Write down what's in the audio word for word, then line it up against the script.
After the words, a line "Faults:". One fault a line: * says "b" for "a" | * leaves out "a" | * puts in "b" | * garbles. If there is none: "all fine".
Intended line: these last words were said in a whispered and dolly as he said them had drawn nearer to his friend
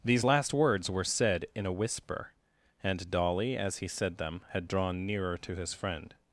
these last words were said in a whisper and dolly as he said them had drawn nearer to his friend
Faults:
* says "whisper" for "whispered"